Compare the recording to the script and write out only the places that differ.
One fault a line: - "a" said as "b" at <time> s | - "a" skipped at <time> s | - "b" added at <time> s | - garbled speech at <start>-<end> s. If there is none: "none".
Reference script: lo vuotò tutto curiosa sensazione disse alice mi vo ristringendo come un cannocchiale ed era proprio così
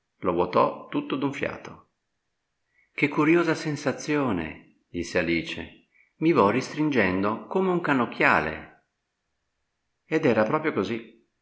- "d'un fiato che" added at 1.1 s